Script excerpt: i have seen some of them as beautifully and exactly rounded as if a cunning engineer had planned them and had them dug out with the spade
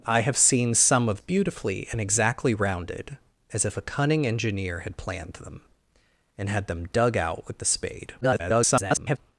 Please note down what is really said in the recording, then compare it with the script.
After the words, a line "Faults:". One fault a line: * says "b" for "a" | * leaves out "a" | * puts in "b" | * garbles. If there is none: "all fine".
i have seen some of beautifully and exactly rounded as if a cunning engineer had planned them and had them dug out with the spade [garbled]
Faults:
* leaves out "them as"
* garbles